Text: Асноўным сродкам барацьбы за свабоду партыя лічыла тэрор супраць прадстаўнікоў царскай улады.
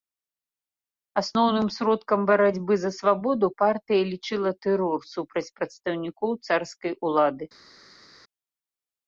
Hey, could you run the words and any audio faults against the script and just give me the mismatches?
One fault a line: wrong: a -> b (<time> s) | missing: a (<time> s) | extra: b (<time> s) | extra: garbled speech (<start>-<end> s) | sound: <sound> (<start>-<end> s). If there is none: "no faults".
no faults